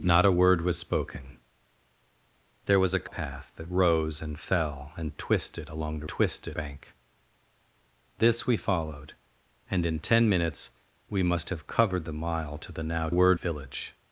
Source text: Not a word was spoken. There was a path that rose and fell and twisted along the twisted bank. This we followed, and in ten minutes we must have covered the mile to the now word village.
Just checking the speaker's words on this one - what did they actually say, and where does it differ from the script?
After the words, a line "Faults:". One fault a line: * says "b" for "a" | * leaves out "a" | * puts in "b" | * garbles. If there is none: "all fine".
Not a word was spoken. There was a path that rose and fell and twisted along the twisted bank. This we followed, and in ten minutes we must have covered the mile to the now word village.
Faults:
all fine